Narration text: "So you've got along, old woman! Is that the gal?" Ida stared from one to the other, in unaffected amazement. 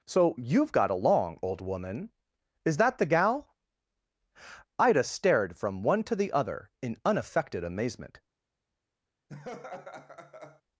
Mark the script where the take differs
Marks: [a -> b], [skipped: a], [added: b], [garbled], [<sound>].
"So you've got along, old woman! Is that the gal?" Ida stared from one to the other, in unaffected amazement. [laugh]